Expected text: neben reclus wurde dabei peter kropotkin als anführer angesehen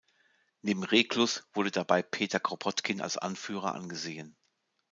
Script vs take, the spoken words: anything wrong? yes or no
no